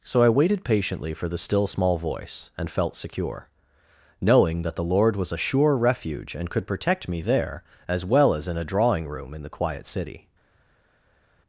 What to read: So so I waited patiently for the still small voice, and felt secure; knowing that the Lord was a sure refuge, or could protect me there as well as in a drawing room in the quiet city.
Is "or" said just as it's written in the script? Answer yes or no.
no